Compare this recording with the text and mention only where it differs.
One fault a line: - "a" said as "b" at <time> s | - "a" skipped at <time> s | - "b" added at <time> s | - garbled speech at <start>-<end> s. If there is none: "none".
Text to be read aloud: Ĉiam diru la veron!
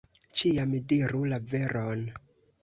none